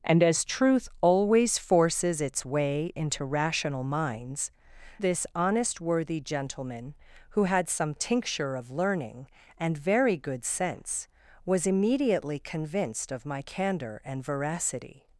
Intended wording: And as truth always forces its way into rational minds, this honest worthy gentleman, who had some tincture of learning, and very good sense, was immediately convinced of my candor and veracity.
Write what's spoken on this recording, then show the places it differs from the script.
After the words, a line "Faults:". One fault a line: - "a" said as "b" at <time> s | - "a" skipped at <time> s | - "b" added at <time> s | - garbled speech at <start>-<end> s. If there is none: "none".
And as truth always forces its way into rational minds, this honest worthy gentleman, who had some tincture of learning, and very good sense, was immediately convinced of my candor and veracity.
Faults:
none